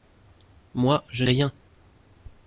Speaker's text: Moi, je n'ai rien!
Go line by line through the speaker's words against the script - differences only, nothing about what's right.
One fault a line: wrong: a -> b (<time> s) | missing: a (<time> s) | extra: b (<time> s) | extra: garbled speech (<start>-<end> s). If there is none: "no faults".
missing: n'ai (1.2 s)